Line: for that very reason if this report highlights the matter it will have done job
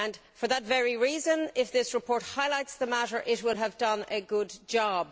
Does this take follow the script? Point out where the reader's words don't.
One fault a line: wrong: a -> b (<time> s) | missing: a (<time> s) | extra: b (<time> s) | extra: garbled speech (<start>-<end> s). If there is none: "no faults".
extra: a good (4.1 s)